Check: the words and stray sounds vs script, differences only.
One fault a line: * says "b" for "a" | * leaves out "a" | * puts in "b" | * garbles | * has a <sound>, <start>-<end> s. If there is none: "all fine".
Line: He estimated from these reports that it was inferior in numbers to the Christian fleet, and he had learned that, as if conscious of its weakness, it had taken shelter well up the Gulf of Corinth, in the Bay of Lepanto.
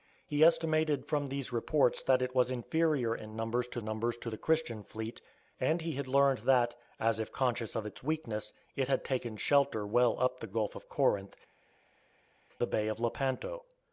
* puts in "numbers to"
* leaves out "in"